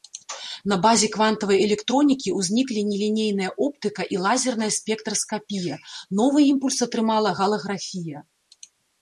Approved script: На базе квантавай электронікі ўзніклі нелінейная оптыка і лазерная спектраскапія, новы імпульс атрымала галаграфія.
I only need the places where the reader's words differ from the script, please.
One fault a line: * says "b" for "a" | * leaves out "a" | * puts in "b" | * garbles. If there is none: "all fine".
all fine